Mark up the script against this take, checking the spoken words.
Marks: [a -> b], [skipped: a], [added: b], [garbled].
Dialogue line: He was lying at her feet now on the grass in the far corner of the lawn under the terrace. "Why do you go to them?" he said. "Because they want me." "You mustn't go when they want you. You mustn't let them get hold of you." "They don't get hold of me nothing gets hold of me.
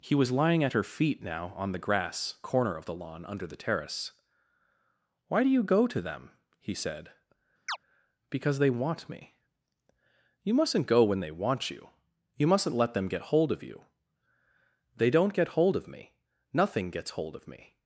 He was lying at her feet now on the grass [skipped: in the far] corner of the lawn under the terrace. "Why do you go to them?" he said. "Because they want me." "You mustn't go when they want you. You mustn't let them get hold of you." "They don't get hold of me nothing gets hold of me.